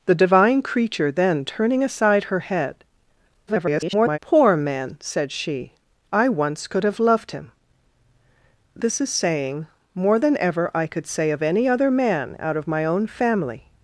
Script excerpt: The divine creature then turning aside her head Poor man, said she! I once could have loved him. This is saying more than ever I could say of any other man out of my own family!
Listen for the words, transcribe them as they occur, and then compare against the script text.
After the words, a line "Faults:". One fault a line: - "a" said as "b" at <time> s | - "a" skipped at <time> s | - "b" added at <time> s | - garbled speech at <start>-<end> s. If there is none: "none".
The divine creature then turning aside her head [garbled] Poor man, said she! I once could have loved him. This is saying more than ever I could say of any other man out of my own family!
Faults:
- garbled speech at 3.5-4.2 s